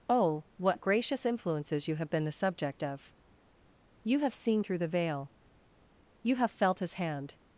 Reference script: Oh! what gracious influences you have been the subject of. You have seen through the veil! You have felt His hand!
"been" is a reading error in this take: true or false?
false